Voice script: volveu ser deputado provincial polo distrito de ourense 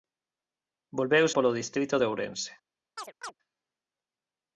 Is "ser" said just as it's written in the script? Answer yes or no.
no